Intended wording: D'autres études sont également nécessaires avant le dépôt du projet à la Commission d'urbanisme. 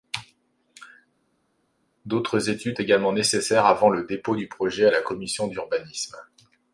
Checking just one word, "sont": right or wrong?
wrong